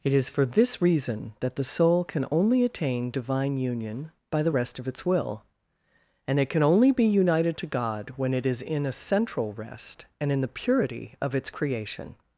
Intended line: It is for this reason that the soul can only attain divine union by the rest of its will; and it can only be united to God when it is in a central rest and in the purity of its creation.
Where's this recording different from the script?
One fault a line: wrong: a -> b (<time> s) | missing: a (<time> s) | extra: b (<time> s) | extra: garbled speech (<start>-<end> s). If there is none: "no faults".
no faults